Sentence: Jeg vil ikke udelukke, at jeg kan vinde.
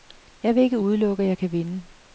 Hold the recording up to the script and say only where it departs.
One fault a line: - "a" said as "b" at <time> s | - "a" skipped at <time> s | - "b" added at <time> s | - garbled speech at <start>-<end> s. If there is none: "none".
none